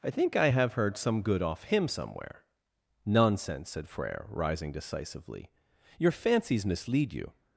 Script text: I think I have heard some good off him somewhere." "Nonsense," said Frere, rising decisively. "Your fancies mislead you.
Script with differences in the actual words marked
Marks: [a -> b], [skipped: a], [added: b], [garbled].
I think I have heard some good off him somewhere." "Nonsense," said Frere, rising decisively. "Your fancies mislead you.